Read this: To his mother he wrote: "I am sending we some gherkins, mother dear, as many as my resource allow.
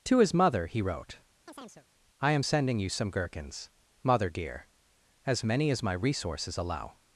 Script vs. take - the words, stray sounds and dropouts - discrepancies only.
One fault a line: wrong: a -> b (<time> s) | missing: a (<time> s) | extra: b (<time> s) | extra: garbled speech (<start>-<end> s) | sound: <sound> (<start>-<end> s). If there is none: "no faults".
sound: chirp (1.5-1.9 s)
wrong: we -> you (2.8 s)
wrong: resource -> resources (5.9 s)